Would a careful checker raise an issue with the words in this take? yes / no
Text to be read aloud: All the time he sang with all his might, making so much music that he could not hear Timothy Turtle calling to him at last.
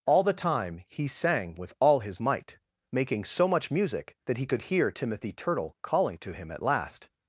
yes